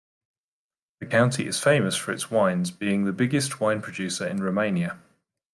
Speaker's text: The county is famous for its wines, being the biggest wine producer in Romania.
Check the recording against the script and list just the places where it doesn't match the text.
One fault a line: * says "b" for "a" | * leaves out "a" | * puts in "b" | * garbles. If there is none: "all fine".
all fine